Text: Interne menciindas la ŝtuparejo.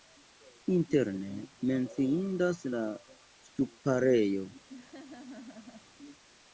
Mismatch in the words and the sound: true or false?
true